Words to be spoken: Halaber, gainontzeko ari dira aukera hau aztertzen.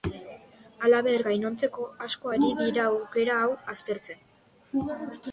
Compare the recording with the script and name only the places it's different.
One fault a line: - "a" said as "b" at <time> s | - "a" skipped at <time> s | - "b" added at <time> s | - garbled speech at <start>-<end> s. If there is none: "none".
- "asko" added at 2.1 s